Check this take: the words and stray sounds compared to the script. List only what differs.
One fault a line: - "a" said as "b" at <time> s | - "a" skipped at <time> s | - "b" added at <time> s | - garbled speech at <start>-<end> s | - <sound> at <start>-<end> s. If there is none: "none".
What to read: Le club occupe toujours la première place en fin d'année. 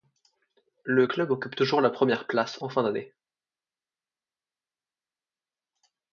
none